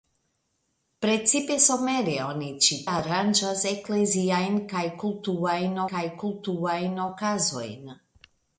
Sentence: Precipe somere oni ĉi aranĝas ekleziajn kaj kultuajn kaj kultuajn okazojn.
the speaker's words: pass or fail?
pass